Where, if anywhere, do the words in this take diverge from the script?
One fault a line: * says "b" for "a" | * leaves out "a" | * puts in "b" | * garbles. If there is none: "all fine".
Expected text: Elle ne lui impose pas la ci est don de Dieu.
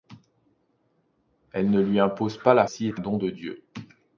all fine